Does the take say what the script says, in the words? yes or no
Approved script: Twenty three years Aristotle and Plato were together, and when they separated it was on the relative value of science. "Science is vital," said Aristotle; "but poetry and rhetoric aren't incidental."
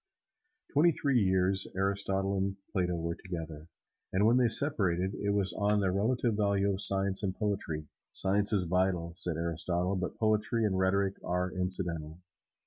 no